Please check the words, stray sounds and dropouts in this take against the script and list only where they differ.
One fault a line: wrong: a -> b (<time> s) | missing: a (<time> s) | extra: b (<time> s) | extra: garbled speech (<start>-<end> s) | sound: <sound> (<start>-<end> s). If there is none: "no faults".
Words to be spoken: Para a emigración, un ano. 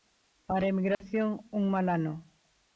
sound: dropout (0.9-1.0 s)
extra: mal (1.7 s)